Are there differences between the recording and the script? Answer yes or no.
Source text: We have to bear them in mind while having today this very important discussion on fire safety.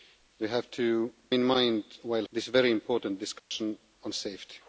yes